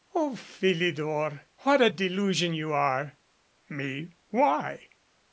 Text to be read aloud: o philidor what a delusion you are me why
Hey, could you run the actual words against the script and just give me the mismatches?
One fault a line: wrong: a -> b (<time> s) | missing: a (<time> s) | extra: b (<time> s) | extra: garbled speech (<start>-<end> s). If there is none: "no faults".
no faults